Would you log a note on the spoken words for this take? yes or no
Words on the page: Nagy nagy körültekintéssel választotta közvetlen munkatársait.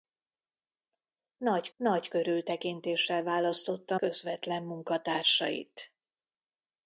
no